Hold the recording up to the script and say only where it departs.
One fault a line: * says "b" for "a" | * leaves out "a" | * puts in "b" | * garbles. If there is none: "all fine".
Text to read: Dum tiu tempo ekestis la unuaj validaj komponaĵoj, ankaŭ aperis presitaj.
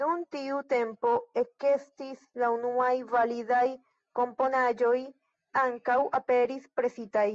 all fine